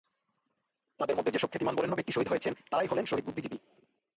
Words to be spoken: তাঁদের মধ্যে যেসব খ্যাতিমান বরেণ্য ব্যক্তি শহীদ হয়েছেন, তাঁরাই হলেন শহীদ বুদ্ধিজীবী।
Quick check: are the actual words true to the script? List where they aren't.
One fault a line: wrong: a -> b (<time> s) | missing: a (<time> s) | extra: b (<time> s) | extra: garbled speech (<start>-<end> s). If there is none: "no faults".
no faults